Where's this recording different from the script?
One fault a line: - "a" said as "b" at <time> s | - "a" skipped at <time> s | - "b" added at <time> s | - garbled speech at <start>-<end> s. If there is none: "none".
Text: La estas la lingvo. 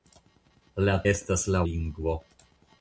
none